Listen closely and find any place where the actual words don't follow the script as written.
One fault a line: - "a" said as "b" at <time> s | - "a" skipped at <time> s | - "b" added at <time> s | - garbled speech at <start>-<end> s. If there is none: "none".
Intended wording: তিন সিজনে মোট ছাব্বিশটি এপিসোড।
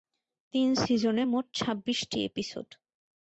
none